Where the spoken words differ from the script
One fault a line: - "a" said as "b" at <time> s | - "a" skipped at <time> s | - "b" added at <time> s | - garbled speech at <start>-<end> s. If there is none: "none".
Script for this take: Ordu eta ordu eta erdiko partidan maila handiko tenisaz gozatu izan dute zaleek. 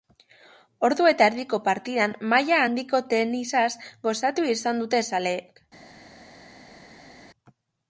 - "ordu eta" skipped at 1.3 s